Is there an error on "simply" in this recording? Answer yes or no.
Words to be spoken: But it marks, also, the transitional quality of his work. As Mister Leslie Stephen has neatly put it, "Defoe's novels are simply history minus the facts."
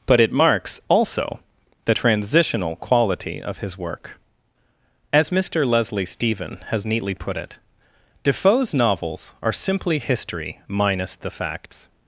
no